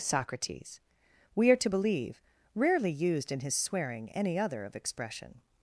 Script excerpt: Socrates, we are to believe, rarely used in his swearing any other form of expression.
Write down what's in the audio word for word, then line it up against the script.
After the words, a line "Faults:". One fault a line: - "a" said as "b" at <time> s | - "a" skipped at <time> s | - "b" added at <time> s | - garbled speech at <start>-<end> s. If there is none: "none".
Socrates, we are to believe, rarely used in his swearing any other of expression.
Faults:
- "form" skipped at 4.6 s